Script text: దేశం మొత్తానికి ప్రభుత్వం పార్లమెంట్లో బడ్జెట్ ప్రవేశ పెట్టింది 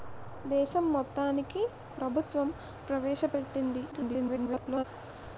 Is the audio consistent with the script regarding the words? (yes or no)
no